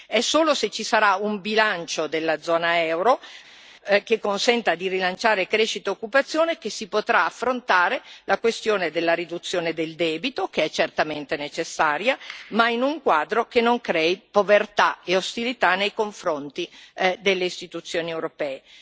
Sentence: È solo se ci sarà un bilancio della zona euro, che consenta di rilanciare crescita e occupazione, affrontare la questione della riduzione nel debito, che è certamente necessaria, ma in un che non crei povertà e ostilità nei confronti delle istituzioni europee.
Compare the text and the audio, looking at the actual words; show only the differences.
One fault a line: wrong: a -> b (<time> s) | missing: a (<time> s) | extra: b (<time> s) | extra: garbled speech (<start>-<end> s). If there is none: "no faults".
extra: che si potrà (6.6 s)
wrong: nel -> del (9.7 s)
extra: quadro (13.0 s)